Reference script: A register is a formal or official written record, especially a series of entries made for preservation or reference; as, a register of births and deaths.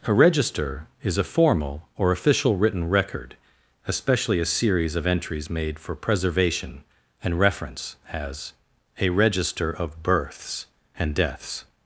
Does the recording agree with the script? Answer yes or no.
no